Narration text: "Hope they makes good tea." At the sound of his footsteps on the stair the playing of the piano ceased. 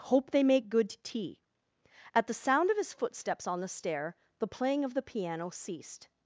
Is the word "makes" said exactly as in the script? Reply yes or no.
no